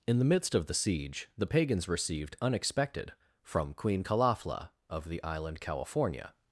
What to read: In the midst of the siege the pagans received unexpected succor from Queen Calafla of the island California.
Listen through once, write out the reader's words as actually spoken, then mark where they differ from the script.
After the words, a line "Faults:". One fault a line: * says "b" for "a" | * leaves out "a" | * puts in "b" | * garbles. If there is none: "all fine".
In the midst of the siege the pagans received unexpected from Queen Calafla of the island California.
Faults:
* leaves out "succor"